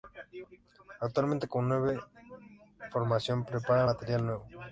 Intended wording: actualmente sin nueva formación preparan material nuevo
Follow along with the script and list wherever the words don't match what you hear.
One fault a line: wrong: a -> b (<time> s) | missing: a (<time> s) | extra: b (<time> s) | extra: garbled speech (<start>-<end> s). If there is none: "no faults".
wrong: sin -> con (1.5 s)